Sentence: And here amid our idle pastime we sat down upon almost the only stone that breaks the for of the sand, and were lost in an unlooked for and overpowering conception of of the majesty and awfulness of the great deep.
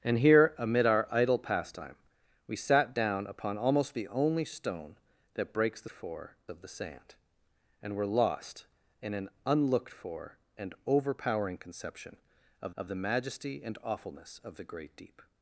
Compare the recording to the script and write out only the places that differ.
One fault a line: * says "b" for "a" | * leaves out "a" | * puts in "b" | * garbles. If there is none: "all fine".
all fine